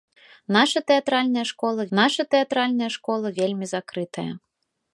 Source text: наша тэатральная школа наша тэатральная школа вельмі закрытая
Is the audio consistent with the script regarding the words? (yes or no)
yes